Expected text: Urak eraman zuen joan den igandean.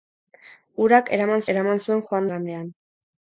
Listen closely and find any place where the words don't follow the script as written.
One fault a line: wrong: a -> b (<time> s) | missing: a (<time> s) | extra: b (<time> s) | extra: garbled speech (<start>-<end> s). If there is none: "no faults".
extra: eraman (1.5 s)
missing: den (2.3 s)